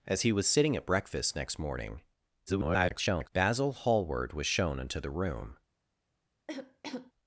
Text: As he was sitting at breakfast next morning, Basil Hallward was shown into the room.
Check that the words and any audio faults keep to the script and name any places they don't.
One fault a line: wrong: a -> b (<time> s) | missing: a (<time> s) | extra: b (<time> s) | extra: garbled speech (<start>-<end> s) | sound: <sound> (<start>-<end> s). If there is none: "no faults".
extra: garbled speech (2.5-3.3 s)
sound: cough (6.5-7.1 s)